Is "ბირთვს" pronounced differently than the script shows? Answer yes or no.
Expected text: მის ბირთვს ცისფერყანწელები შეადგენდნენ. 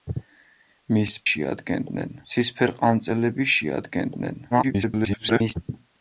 yes